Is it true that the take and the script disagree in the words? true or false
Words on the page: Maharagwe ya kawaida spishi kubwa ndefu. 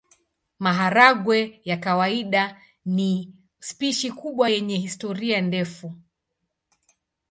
true